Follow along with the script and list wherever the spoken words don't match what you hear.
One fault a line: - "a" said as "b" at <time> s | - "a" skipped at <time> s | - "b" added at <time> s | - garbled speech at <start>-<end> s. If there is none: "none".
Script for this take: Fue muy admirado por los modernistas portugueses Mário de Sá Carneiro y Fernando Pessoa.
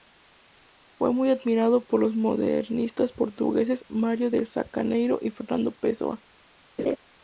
none